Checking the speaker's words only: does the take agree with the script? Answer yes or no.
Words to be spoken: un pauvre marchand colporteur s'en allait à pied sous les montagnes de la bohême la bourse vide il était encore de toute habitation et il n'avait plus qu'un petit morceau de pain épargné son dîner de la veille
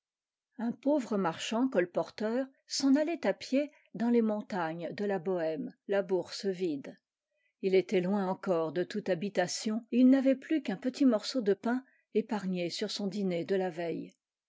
no